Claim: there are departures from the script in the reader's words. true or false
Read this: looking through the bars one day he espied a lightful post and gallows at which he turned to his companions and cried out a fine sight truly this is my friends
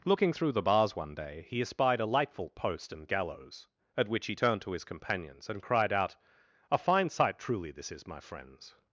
false